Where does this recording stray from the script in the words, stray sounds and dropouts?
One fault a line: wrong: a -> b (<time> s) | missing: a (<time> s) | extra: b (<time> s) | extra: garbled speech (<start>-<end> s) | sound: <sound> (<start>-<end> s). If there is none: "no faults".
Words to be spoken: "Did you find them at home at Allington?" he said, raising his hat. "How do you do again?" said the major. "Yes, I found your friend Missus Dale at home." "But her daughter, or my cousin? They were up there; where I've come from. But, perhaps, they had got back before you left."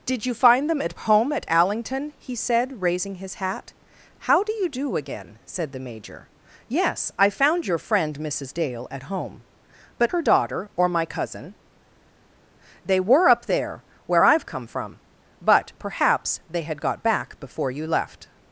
no faults